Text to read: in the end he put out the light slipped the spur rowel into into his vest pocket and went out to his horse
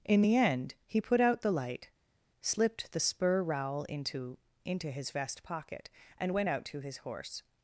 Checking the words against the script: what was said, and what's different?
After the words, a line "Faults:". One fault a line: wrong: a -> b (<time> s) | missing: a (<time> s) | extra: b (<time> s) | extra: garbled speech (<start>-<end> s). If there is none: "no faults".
in the end he put out the light slipped the spur rowel into into his vest pocket and went out to his horse
Faults:
no faults